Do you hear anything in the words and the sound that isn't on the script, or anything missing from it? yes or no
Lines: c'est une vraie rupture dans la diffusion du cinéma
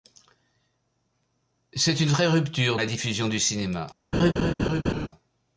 yes